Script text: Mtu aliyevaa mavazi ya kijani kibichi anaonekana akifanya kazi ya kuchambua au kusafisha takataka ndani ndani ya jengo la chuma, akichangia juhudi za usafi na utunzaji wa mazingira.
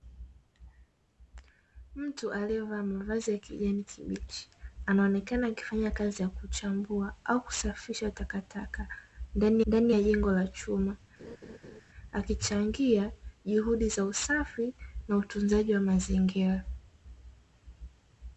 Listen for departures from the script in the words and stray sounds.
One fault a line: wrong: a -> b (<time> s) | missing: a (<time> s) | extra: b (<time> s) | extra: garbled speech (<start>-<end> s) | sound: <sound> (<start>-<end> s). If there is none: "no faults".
sound: laugh (11.2-11.8 s)